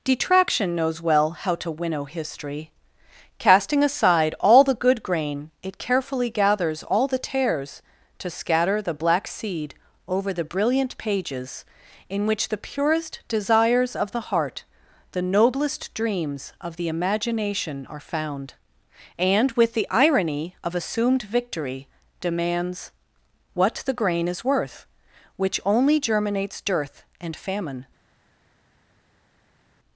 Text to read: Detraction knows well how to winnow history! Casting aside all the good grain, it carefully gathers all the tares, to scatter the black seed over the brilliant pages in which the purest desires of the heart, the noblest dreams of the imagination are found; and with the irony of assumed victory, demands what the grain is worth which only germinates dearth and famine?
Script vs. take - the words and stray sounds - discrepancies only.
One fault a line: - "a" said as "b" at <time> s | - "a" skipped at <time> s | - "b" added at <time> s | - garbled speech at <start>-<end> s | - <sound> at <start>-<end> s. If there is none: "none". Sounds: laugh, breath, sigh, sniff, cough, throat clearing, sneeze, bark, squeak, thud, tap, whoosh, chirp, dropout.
none